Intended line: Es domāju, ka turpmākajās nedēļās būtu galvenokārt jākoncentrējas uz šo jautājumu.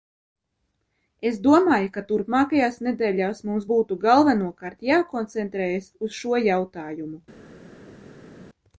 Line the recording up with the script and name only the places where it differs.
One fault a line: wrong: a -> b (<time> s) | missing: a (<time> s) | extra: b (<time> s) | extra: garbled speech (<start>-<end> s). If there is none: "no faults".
extra: mums (3.5 s)